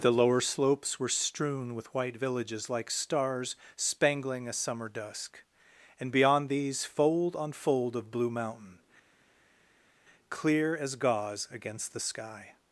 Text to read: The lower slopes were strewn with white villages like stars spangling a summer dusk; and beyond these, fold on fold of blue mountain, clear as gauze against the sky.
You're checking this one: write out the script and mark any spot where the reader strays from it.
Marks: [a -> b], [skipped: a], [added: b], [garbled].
The lower slopes were strewn with white villages like stars spangling a summer dusk; and beyond these, fold on fold of blue mountain, clear as gauze against the sky.